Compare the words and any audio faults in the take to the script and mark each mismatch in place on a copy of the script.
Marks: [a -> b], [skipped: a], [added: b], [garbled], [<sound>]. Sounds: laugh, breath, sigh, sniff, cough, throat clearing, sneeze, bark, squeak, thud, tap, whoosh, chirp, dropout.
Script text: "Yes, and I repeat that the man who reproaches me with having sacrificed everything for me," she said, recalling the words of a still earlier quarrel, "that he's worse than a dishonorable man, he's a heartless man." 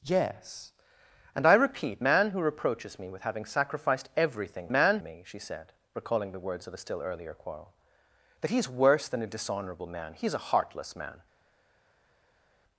"Yes, and I repeat [skipped: that the] man who reproaches me with having sacrificed everything [for -> man] me," she said, recalling the words of a still earlier quarrel, "that he's worse than a dishonorable man, he's a heartless man."